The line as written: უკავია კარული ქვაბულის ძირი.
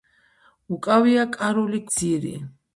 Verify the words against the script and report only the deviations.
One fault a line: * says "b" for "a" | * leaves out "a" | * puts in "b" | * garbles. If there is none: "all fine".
* leaves out "ქვაბულის"